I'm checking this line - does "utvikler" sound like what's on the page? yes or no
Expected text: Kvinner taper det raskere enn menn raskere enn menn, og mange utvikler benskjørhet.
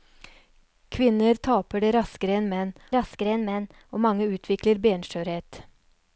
yes